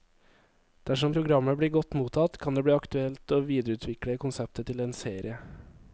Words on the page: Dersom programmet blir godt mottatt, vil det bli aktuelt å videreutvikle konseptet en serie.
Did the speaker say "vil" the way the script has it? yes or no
no